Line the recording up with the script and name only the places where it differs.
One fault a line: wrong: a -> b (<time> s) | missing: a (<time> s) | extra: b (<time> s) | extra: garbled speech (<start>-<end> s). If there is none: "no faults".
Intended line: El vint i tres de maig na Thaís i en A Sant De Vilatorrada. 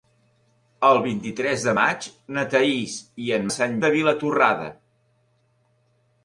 no faults